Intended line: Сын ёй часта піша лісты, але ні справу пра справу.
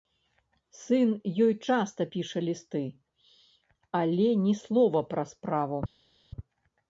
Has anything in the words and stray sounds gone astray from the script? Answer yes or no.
yes